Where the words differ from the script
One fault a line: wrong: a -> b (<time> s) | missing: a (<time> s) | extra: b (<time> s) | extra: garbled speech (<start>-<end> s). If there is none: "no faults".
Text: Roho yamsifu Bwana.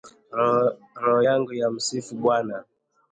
extra: yangu (1.3 s)